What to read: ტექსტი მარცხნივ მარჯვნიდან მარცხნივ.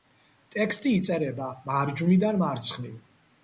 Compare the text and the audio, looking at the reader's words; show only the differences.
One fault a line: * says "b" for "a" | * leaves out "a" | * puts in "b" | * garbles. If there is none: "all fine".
* says "იწერება" for "მარცხნივ"